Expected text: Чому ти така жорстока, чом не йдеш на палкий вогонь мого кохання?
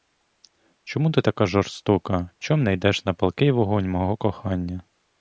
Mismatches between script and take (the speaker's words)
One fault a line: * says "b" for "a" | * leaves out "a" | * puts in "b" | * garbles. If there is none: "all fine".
all fine